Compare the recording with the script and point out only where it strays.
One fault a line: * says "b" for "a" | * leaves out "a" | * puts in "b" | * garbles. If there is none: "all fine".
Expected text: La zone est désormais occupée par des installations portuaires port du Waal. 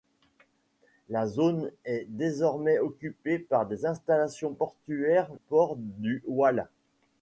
all fine